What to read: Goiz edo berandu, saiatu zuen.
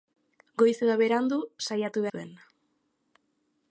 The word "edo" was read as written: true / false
true